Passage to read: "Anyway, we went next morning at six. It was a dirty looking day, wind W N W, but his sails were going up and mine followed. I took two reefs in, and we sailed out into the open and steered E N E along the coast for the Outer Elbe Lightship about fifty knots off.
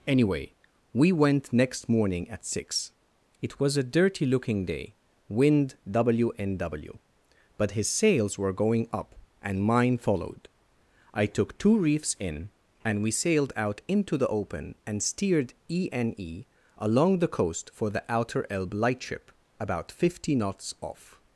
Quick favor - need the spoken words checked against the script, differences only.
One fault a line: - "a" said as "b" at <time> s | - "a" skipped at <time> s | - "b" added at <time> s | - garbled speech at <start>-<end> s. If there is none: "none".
none